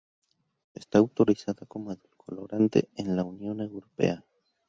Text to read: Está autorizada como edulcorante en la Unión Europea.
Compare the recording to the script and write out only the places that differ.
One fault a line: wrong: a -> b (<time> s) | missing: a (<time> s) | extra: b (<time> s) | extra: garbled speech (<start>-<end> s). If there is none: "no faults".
no faults